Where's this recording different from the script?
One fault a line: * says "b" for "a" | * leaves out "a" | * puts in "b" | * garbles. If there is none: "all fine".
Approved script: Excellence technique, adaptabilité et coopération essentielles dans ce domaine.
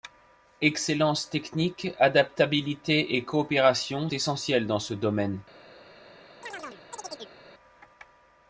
all fine